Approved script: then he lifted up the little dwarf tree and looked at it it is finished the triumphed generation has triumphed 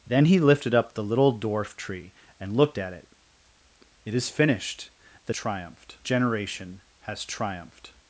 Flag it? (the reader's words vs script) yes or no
no